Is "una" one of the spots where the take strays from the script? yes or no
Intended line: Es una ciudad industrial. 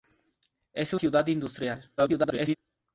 yes